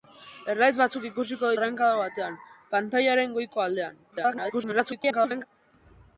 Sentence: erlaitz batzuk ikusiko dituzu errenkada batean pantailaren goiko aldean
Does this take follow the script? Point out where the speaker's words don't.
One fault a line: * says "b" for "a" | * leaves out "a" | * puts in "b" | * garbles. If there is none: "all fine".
* leaves out "dituzu"
* garbles